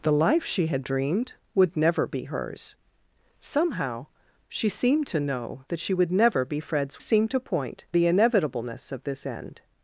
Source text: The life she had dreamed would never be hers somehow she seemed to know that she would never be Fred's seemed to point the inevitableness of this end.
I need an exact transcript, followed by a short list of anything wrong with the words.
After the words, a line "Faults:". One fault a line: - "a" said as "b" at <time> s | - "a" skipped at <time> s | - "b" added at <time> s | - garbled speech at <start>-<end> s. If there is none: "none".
The life she had dreamed would never be hers somehow she seemed to know that she would never be Fred's seemed to point the inevitableness of this end.
Faults:
none